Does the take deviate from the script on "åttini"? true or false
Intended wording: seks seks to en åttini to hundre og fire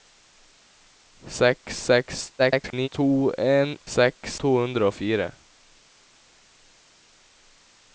true